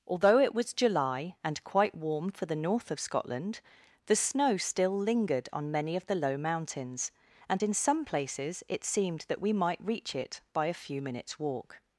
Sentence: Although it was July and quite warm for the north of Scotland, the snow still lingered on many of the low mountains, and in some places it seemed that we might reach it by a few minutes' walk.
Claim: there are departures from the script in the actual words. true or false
false